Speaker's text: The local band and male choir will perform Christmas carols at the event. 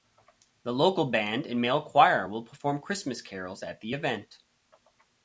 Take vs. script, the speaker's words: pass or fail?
pass